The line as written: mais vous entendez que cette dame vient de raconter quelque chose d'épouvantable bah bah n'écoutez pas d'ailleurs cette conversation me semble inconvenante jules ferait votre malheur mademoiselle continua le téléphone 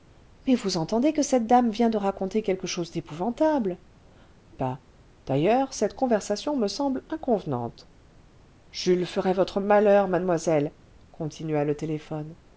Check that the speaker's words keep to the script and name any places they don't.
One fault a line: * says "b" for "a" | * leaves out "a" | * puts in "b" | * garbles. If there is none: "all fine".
* leaves out "bah bah n'écoutez"